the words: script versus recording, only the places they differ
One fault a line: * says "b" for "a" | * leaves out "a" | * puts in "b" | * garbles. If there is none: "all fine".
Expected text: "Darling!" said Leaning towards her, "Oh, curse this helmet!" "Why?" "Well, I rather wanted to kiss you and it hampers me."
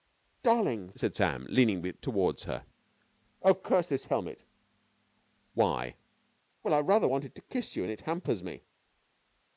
* puts in "Sam"